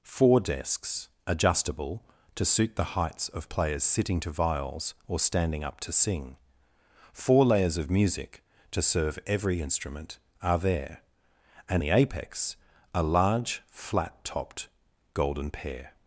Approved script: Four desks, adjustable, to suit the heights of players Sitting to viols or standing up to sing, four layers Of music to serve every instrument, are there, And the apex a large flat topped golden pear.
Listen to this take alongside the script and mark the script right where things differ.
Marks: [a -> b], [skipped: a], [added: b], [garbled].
Four desks, adjustable, to suit the heights of players Sitting to viols or standing up to sing, four layers Of music to serve every instrument, are there, And the apex a large flat topped golden pear.